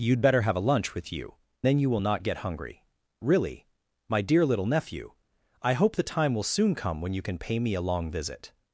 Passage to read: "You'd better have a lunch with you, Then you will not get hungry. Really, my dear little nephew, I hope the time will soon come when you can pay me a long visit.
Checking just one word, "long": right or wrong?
right